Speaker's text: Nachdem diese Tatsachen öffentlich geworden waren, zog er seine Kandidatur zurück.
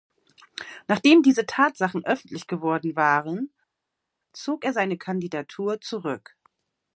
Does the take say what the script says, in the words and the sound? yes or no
yes